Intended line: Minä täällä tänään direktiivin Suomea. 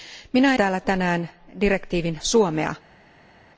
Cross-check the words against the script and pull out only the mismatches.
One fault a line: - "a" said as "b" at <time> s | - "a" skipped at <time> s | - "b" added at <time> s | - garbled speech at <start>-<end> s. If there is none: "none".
none